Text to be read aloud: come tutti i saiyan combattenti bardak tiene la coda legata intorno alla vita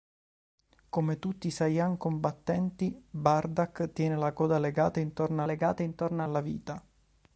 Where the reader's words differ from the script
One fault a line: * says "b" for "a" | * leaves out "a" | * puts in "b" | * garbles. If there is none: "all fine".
* puts in "legata intorno"